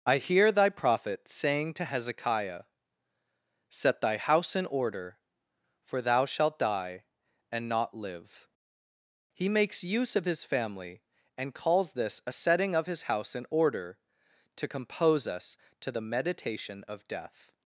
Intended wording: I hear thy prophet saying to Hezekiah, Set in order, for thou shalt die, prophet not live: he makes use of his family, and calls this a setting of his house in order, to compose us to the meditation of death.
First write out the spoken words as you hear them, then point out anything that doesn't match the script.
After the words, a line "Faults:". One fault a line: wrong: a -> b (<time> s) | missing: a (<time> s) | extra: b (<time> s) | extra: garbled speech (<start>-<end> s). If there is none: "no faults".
I hear thy prophet saying to Hezekiah, Set thy house in order, for thou shalt die, and not live: he makes use of his family, and calls this a setting of his house in order, to compose us to the meditation of death.
Faults:
extra: thy house (4.0 s)
wrong: prophet -> and (7.5 s)